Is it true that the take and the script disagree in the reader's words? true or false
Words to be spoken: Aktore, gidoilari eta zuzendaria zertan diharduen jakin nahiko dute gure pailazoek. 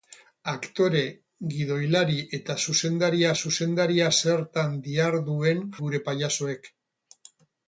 true